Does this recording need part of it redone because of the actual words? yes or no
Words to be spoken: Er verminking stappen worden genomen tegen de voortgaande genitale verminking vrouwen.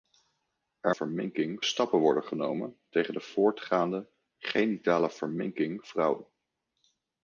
no